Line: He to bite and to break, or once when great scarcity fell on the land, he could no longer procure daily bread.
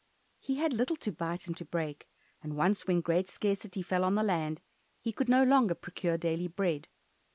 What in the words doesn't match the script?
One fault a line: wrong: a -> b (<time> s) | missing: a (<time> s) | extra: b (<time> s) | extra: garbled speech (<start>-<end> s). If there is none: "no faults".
extra: had little (0.6 s)
wrong: or -> and (2.4 s)